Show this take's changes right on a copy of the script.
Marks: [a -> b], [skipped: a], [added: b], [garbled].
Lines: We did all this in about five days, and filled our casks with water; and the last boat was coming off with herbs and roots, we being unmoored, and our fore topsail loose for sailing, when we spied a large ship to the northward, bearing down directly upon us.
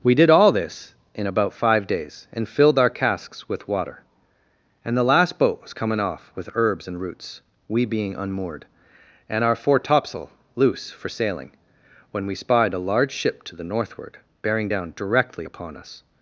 We did all this in about five days, and filled our casks with water; and the last boat was coming off with herbs and roots, we being unmoored, and our fore topsail loose for sailing, when we spied a large ship to the northward, bearing down directly upon us.